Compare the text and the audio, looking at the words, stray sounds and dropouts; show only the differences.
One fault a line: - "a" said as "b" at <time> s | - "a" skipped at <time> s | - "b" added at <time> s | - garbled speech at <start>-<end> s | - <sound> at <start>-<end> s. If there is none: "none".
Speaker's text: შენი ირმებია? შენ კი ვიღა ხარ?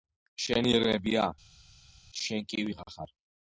none